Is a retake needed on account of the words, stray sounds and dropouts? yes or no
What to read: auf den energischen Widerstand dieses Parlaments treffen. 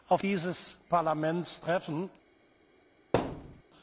yes